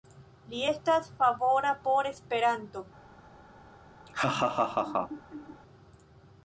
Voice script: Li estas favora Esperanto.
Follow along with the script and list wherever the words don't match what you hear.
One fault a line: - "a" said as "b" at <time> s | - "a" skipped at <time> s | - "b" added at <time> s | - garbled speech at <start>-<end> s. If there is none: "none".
- "por" added at 1.9 s